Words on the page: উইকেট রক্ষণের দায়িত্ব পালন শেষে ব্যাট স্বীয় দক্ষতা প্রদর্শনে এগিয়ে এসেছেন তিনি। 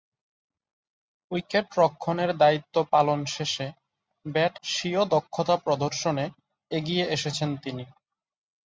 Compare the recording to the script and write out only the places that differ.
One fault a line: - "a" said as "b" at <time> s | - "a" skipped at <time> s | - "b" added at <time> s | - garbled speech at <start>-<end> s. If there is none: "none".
none